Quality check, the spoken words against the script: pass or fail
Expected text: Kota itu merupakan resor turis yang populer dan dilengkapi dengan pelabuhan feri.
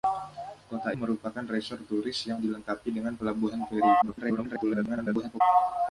fail